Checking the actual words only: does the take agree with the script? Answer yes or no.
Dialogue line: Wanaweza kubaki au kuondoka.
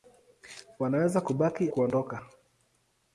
no